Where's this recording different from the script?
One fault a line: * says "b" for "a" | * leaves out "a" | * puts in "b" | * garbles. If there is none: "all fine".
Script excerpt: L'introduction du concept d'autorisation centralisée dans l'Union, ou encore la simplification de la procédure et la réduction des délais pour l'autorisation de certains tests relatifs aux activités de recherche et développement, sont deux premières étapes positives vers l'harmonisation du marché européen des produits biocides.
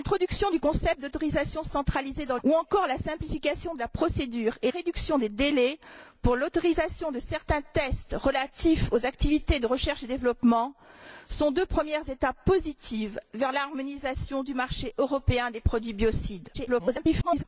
* leaves out "l'Union"
* leaves out "la"
* garbles